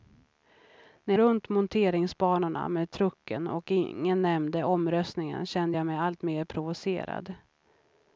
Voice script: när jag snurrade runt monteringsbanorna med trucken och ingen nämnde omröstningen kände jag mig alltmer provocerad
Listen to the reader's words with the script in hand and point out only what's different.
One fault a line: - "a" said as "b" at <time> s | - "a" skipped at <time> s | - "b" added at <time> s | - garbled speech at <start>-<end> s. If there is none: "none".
- "jag snurrade" skipped at 1.1 s